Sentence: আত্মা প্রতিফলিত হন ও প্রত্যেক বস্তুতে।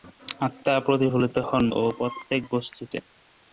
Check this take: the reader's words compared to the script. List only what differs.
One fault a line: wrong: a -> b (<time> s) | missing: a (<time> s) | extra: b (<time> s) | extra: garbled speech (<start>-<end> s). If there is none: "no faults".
no faults